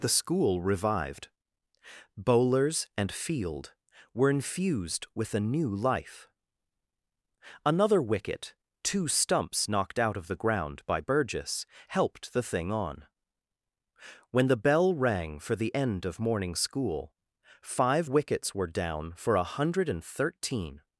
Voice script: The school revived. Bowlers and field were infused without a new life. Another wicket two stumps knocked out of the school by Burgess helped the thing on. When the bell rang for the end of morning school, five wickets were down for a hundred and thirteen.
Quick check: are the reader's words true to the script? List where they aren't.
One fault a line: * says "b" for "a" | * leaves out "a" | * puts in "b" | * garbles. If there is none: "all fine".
* says "with" for "without"
* says "ground" for "school"